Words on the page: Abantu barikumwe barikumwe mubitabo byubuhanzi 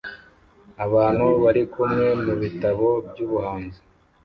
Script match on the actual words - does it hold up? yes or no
no